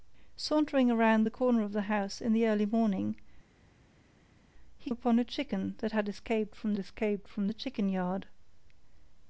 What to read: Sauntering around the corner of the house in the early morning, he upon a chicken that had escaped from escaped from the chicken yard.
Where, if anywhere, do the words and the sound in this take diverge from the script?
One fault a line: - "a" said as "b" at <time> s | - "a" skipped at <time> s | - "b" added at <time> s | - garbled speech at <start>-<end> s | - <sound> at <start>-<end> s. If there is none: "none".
none